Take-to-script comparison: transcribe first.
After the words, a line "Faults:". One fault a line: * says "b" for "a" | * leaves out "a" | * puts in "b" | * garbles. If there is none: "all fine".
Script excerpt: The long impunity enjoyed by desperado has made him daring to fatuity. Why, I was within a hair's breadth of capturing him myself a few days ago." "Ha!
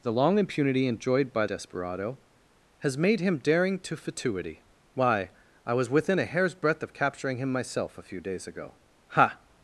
The long impunity enjoyed by desperado has made him daring to fatuity. Why, I was within a hair's breadth of capturing him myself a few days ago." "Ha!
Faults:
all fine